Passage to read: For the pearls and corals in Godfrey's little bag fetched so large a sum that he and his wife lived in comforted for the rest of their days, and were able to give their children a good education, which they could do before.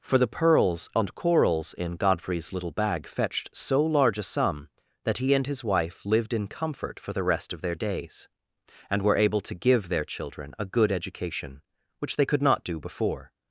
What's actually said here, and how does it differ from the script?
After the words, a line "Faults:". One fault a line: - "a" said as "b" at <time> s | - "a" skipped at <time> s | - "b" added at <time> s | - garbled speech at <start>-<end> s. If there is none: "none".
For the pearls and corals in Godfrey's little bag fetched so large a sum that he and his wife lived in comfort for the rest of their days, and were able to give their children a good education, which they could not do before.
Faults:
- "comforted" said as "comfort" at 6.5 s
- "not" added at 12.4 s